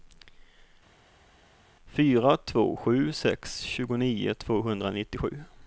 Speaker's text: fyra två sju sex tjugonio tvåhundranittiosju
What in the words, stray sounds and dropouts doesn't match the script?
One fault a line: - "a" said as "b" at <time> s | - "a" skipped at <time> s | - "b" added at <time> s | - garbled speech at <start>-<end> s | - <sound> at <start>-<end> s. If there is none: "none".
none